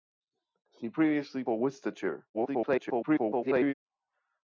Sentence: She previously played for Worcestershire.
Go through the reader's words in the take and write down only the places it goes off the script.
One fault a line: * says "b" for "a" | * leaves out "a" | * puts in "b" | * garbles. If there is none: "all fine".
* leaves out "played"
* garbles